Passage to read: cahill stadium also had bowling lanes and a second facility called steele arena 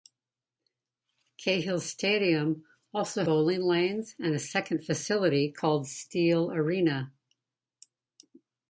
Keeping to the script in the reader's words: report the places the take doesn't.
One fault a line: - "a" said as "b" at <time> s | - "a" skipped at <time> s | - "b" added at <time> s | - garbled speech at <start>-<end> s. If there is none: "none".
- "had" skipped at 3.2 s